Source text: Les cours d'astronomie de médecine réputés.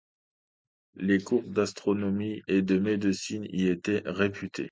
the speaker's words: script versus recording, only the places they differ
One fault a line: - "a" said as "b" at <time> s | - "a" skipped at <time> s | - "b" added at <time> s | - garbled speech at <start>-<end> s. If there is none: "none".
- "et" added at 2.5 s
- "y étaient" added at 3.5 s